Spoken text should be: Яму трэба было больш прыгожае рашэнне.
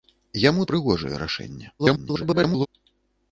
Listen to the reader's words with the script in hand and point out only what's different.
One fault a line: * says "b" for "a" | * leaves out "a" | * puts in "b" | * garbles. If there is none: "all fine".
* leaves out "трэба было больш"
* garbles